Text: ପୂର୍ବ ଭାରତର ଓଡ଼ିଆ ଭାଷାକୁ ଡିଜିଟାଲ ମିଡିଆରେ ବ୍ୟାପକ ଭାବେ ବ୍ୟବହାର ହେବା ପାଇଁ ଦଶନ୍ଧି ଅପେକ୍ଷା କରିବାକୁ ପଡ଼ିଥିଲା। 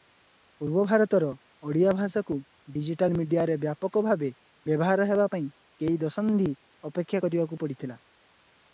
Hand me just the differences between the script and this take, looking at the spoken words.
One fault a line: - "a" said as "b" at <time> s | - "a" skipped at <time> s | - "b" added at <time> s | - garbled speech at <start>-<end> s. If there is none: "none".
- "କେଇ" added at 5.8 s